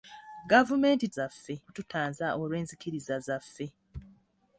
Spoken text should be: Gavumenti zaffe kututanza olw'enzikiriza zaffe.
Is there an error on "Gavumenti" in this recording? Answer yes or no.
no